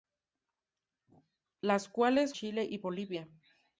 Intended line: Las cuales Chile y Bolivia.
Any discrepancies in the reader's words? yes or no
no